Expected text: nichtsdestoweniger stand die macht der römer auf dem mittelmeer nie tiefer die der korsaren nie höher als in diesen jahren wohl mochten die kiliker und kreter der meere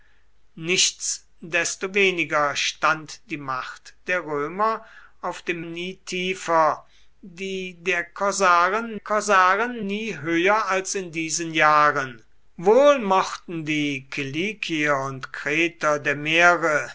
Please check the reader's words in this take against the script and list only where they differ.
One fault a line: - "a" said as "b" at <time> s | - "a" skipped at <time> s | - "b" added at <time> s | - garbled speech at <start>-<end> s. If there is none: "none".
- "mittelmeer" skipped at 5.6 s
- "korsaren" added at 8.9 s